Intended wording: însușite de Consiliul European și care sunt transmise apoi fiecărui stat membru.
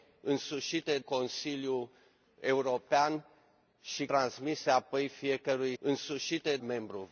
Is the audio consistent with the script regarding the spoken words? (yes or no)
no